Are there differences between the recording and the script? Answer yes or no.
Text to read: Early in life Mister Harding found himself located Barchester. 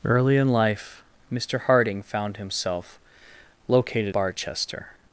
no